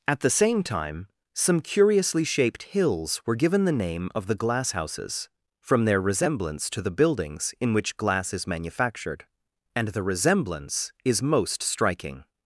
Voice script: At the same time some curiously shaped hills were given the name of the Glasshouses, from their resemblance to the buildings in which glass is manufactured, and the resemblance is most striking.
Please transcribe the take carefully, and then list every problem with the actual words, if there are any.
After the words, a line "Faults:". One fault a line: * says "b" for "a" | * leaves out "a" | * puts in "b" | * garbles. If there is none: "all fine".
At the same time some curiously shaped hills were given the name of the Glasshouses, from their resemblance to the buildings in which glass is manufactured, and the resemblance is most striking.
Faults:
all fine